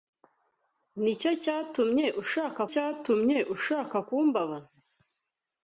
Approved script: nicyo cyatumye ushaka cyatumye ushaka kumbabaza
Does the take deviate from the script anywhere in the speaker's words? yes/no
no